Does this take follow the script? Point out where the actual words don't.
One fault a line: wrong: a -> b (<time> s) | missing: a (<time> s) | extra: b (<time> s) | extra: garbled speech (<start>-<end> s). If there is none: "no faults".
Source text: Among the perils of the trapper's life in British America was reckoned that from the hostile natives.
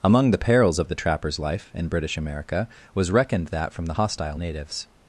no faults